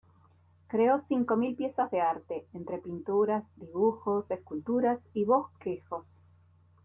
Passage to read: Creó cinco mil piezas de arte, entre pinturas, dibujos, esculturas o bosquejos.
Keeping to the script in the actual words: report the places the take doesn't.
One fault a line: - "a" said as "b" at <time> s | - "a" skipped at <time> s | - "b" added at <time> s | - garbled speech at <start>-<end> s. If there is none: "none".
- "o" said as "y" at 5.1 s